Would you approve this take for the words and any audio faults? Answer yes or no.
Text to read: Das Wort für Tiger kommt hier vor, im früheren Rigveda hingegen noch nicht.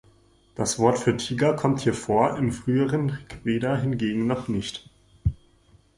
yes